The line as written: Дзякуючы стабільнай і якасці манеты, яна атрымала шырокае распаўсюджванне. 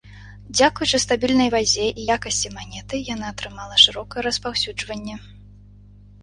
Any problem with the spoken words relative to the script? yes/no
yes